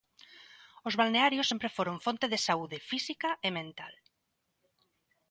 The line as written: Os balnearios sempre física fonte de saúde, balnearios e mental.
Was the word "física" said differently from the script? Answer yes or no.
yes